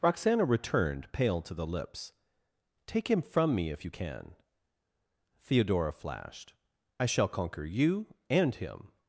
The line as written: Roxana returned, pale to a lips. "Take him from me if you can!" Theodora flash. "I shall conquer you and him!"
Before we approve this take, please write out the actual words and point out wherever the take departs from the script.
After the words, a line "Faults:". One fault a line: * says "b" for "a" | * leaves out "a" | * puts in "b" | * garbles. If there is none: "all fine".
Roxana returned, pale to the lips. "Take him from me if you can!" Theodora flashed. "I shall conquer you and him!"
Faults:
* says "the" for "a"
* says "flashed" for "flash"